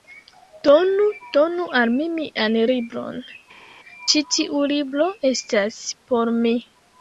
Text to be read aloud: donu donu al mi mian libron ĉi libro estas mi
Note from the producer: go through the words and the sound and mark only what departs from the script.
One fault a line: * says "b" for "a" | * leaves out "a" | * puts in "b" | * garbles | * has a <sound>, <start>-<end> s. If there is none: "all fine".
* puts in "tiu"
* puts in "por"